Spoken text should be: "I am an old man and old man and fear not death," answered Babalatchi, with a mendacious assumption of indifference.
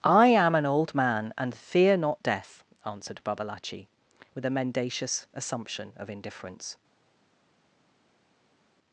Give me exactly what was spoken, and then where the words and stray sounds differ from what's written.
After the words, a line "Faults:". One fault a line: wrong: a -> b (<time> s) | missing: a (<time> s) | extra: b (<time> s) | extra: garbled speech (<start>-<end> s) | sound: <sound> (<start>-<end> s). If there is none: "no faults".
"I am an old man and fear not death," answered Babalatchi, with a mendacious assumption of indifference.
Faults:
missing: old man and (1.5 s)